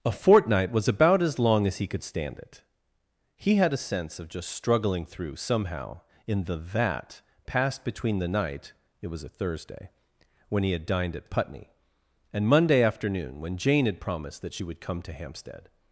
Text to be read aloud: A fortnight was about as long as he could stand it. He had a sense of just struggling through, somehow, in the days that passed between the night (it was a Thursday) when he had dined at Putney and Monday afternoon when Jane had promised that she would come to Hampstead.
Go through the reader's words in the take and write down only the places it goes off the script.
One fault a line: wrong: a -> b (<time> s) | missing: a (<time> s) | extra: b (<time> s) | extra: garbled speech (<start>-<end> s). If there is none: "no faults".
missing: days (6.5 s)